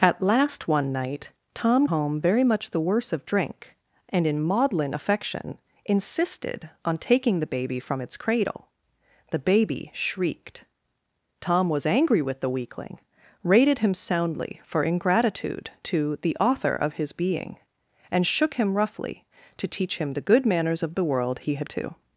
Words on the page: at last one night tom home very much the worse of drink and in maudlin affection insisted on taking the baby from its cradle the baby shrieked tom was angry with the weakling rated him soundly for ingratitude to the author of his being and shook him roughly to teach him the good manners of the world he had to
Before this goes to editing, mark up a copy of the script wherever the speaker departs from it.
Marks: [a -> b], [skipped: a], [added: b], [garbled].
at last one night tom home very much the worse of drink and in maudlin affection insisted on taking the baby from its cradle the baby shrieked tom was angry with the weakling rated him soundly for ingratitude to the author of his being and shook him roughly to teach him the good manners of the world he had to